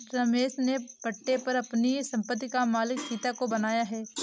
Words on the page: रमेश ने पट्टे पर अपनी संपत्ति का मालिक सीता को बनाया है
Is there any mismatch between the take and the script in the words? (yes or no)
no